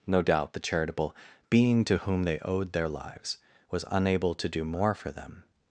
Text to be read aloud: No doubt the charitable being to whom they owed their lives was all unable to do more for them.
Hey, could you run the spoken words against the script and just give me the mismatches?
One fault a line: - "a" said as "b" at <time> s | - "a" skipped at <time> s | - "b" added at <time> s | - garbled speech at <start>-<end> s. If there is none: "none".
- "all" skipped at 3.9 s